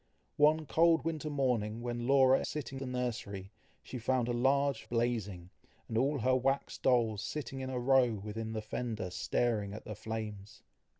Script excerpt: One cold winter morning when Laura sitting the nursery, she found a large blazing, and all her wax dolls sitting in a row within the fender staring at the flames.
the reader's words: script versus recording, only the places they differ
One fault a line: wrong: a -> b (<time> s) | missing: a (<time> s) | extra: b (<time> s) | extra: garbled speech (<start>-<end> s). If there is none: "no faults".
no faults